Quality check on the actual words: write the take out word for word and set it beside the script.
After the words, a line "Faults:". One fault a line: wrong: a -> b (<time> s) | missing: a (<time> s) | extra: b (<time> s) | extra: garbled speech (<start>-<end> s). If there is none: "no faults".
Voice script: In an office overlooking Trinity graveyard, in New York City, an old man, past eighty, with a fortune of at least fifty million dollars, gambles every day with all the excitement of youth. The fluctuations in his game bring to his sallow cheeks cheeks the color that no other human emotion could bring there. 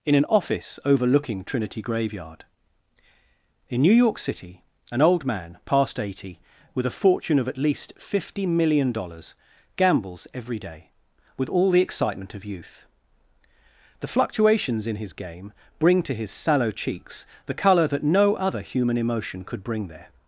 In an office overlooking Trinity graveyard, in New York City, an old man, past eighty, with a fortune of at least fifty million dollars, gambles every day with all the excitement of youth. The fluctuations in his game bring to his sallow cheeks the color that no other human emotion could bring there.
Faults:
missing: cheeks (17.3 s)